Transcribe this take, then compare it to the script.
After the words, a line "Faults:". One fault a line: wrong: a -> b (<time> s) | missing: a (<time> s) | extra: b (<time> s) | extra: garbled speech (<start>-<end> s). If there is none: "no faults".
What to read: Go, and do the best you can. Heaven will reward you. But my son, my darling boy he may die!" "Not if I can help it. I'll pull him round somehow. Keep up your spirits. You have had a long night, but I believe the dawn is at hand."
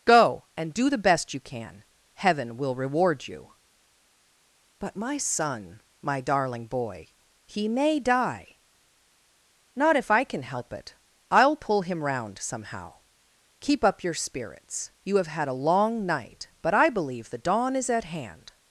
Go, and do the best you can. Heaven will reward you. But my son, my darling boy he may die!" "Not if I can help it. I'll pull him round somehow. Keep up your spirits. You have had a long night, but I believe the dawn is at hand."
Faults:
no faults